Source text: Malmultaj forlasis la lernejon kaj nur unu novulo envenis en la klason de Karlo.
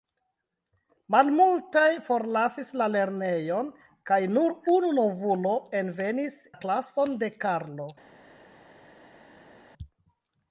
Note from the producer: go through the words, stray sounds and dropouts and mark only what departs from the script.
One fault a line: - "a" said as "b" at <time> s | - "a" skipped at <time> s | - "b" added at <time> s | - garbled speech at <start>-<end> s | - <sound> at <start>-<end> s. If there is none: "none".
- "en" skipped at 6.4 s